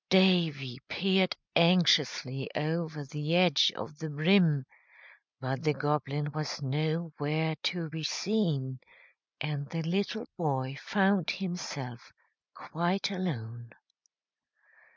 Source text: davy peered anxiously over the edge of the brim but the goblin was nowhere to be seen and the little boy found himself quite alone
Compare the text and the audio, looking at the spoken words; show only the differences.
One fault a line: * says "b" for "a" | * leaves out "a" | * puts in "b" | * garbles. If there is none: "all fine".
all fine